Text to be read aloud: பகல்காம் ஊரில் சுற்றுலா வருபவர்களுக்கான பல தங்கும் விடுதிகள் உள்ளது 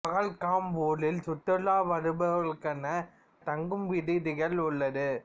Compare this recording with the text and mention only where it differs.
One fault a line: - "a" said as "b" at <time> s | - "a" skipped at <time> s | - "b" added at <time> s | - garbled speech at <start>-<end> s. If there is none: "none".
- "பல" skipped at 2.8 s